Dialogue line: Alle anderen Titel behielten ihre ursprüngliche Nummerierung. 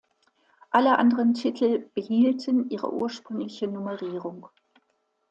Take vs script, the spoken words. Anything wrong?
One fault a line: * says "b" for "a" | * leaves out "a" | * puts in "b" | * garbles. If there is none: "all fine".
all fine